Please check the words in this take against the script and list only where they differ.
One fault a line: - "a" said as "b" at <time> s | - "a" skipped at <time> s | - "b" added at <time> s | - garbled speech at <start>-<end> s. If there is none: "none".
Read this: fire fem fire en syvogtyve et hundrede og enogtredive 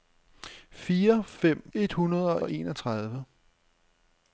- "fire en syvogtyve" skipped at 1.7 s
- "og" added at 2.4 s